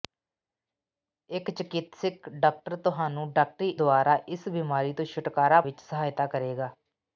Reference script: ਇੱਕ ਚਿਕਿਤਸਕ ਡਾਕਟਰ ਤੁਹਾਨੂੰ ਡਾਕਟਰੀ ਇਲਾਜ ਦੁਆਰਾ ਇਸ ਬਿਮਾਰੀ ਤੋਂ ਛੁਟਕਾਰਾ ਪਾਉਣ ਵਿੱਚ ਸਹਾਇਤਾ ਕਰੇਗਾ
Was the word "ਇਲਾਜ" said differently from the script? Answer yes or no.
yes